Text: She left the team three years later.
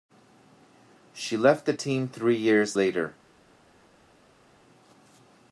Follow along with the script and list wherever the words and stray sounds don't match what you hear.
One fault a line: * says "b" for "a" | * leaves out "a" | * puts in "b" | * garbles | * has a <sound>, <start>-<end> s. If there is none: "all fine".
all fine